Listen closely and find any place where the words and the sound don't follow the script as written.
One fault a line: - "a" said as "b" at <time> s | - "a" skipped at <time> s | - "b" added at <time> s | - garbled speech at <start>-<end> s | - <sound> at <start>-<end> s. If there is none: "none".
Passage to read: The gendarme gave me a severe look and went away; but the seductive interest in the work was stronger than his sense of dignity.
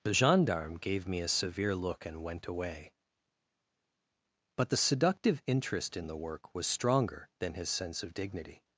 none